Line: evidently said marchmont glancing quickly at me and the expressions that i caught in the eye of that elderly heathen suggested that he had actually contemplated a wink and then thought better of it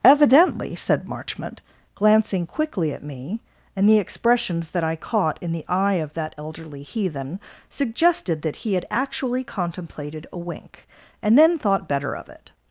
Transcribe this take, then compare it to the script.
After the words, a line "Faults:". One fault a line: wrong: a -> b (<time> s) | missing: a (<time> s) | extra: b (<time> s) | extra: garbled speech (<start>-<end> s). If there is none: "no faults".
evidently said marchmont glancing quickly at me and the expressions that i caught in the eye of that elderly heathen suggested that he had actually contemplated a wink and then thought better of it
Faults:
no faults